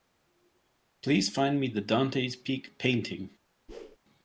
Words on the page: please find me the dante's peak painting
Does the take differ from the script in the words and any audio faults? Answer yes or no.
yes